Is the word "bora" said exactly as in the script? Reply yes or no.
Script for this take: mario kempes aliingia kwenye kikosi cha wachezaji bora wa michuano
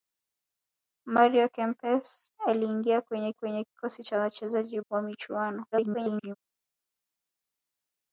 no